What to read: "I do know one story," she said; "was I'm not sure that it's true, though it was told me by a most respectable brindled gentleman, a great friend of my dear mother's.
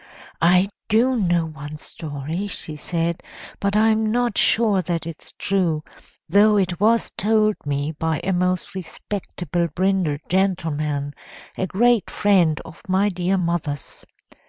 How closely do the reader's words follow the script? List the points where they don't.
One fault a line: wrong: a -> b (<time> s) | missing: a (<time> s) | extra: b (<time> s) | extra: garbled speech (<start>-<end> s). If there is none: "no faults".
wrong: was -> but (3.6 s)